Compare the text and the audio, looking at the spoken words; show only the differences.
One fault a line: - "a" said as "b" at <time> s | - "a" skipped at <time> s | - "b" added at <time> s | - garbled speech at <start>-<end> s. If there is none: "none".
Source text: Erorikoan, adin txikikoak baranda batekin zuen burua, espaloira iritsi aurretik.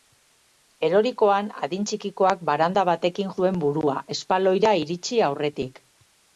none